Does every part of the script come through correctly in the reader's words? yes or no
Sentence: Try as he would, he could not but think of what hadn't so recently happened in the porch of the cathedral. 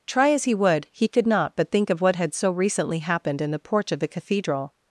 no